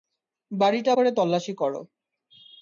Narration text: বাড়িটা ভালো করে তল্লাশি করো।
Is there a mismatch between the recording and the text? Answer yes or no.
yes